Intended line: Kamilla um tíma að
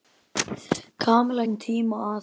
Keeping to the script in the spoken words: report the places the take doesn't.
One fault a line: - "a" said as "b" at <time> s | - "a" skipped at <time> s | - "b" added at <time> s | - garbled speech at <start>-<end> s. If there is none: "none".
none